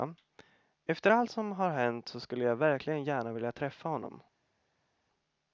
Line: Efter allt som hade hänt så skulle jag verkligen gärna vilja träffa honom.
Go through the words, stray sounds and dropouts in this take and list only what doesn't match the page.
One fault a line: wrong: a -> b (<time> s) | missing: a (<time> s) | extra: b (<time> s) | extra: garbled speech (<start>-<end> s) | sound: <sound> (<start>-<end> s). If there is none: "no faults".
wrong: hade -> har (1.5 s)